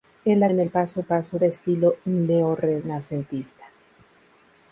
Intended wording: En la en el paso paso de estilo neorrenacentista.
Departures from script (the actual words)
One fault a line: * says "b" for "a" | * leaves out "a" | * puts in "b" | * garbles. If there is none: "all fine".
all fine